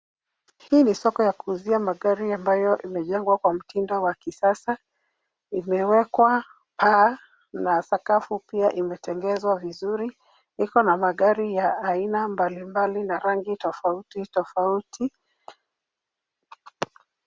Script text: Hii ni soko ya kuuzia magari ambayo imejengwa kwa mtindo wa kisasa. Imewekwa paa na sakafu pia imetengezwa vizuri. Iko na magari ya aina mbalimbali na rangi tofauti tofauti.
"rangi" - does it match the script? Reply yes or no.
yes